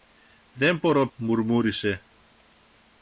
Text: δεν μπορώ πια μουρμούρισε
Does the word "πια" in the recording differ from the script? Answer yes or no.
yes